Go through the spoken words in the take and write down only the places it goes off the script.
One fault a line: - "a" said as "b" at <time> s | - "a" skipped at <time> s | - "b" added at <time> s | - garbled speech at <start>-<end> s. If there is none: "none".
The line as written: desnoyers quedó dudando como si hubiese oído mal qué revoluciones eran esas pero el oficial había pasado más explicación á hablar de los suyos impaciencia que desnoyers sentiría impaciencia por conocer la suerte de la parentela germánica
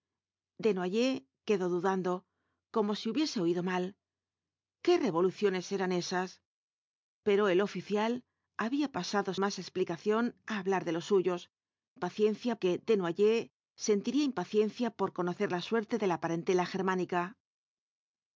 none